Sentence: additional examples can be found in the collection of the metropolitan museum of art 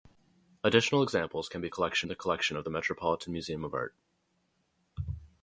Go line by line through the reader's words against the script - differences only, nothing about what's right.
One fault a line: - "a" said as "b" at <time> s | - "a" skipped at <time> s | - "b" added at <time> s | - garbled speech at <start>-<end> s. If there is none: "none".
- "found" said as "collection" at 1.7 s